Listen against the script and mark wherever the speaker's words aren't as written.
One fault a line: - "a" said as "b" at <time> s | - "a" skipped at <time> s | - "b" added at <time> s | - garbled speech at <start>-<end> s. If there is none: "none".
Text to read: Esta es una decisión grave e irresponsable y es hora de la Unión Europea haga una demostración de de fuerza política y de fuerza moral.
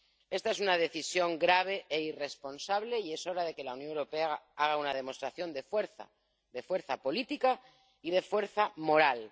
- "que" added at 3.5 s
- "fuerza" added at 5.6 s